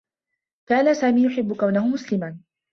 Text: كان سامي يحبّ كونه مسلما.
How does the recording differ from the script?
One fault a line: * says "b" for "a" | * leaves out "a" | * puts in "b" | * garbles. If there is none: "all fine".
all fine